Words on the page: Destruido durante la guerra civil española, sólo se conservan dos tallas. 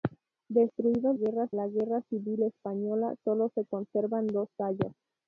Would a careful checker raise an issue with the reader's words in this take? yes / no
yes